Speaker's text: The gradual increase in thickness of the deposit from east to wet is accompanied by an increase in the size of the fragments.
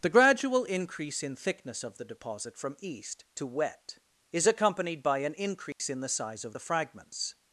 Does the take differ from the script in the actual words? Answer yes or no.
no